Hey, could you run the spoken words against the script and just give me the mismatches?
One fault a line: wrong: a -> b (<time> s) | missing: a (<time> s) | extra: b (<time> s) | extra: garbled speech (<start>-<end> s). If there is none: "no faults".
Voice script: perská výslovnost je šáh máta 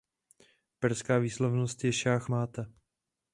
no faults